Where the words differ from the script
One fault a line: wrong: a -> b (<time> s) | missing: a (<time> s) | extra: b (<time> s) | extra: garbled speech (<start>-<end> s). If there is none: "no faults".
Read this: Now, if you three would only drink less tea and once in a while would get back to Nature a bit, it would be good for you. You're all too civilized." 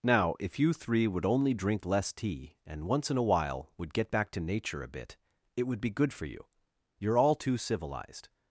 no faults